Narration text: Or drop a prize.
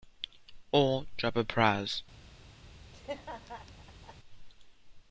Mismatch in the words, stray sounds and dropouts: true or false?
true